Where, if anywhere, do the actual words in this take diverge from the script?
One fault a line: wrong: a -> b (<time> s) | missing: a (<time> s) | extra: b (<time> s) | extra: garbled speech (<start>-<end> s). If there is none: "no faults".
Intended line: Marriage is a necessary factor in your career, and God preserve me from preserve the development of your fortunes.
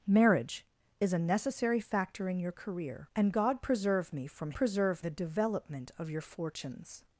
no faults